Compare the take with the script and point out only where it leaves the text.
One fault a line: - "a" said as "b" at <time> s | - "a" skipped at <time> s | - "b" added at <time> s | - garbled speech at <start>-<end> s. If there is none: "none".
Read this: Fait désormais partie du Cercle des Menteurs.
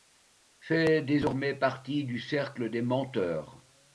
none